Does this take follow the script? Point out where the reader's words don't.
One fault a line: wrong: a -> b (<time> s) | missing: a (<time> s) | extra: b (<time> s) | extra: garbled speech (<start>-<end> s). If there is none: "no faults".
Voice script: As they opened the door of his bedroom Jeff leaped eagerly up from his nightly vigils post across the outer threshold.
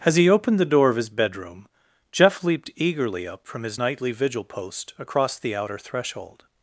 wrong: they -> he (0.1 s)
wrong: vigils -> vigil (4.1 s)